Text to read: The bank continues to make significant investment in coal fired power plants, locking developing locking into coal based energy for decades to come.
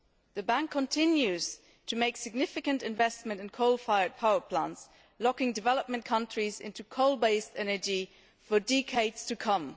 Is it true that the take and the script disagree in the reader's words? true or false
true